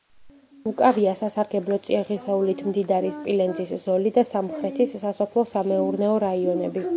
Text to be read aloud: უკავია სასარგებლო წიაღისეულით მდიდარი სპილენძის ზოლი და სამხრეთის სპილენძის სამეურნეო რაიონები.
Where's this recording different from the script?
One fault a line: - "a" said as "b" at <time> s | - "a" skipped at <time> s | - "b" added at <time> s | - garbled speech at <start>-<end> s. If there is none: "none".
- "სპილენძის" said as "სასოფლო" at 5.0 s